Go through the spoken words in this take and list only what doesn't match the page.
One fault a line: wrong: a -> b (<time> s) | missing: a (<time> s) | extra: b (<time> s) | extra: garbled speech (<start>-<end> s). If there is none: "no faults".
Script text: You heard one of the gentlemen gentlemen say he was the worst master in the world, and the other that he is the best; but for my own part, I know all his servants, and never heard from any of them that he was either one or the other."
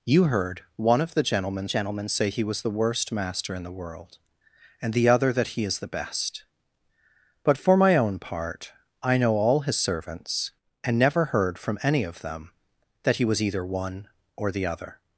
no faults